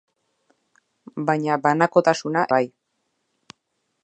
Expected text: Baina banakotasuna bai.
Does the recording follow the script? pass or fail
pass